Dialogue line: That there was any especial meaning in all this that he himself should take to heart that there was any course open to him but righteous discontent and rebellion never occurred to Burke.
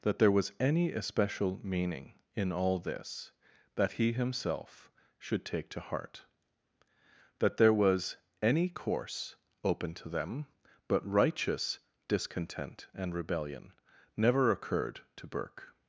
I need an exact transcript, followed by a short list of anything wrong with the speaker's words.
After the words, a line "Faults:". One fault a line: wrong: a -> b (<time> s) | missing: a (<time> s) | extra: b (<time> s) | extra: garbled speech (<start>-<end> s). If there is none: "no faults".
That there was any especial meaning in all this that he himself should take to heart that there was any course open to them but righteous discontent and rebellion never occurred to Burke.
Faults:
wrong: him -> them (10.1 s)